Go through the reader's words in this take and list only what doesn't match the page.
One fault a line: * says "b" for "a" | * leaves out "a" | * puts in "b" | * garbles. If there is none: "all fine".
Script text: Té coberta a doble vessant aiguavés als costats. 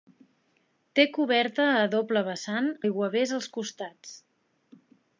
all fine